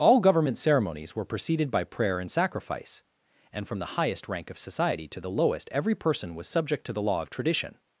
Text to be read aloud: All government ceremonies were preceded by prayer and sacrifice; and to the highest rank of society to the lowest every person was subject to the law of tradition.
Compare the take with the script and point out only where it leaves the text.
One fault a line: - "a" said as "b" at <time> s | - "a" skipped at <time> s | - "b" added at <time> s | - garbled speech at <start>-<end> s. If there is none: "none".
- "to" said as "from" at 3.7 s